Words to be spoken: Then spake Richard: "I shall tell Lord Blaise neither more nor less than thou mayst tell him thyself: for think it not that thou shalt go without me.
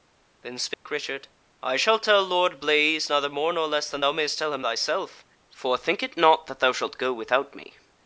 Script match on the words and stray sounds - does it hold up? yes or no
no